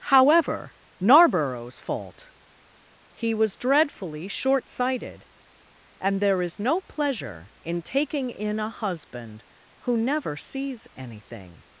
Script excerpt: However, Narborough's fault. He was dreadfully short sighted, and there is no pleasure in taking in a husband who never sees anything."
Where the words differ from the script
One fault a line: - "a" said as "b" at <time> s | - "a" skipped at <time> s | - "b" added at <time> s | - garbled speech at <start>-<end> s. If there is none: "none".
none